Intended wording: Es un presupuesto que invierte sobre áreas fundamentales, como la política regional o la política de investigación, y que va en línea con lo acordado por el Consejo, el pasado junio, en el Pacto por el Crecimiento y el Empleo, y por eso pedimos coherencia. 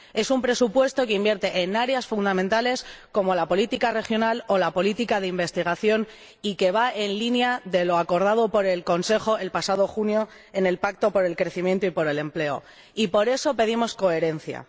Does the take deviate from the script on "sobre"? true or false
true